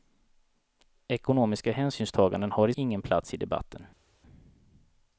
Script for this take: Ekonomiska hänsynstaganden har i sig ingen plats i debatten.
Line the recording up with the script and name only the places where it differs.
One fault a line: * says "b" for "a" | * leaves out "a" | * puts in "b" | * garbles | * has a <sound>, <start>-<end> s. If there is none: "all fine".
* leaves out "sig"